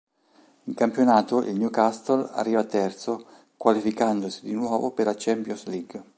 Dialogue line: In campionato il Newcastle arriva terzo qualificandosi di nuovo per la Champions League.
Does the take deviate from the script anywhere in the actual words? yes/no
no